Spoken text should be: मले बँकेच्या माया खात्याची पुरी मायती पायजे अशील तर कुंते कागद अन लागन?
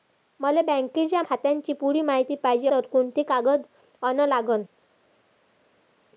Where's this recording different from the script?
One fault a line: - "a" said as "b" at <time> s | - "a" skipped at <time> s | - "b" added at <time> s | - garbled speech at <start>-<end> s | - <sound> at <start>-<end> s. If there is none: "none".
- "माया" skipped at 1.2 s
- "अशील" skipped at 2.7 s